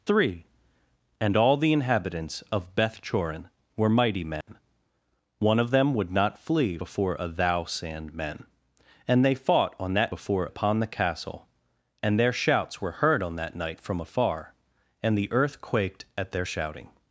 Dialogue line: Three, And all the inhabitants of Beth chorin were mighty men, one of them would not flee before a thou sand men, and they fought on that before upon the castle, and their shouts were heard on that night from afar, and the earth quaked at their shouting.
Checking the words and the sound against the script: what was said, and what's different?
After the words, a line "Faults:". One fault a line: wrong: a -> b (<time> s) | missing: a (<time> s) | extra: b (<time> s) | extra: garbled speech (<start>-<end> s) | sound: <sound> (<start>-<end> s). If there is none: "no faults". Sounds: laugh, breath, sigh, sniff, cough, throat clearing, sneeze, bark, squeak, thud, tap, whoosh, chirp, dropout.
Three, And all the inhabitants of Beth chorin were mighty men, one of them would not flee before a thou sand men, and they fought on that before upon the castle, and their shouts were heard on that night from afar, and the earth quaked at their shouting.
Faults:
sound: dropout (4.4-4.5 s)